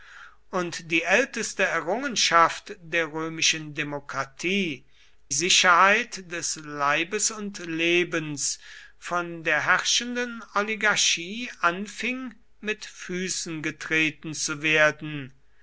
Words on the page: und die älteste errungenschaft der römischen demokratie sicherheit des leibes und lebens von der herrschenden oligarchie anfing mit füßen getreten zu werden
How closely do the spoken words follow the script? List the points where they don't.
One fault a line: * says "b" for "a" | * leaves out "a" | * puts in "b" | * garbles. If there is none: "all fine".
all fine